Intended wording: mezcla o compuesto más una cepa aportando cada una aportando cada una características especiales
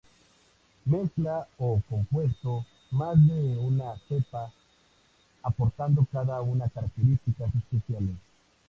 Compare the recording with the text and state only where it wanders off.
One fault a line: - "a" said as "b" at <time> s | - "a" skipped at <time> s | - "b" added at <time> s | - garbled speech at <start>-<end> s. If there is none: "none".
- "de" added at 3.3 s
- "aportando cada una" skipped at 6.7 s